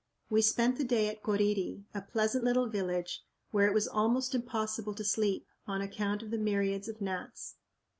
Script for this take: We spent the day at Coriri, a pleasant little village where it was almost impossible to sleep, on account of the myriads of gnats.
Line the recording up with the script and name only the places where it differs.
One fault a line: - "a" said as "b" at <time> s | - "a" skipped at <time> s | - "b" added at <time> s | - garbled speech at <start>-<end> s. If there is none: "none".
none